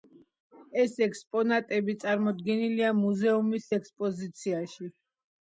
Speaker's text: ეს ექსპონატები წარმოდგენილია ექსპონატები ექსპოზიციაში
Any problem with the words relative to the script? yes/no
yes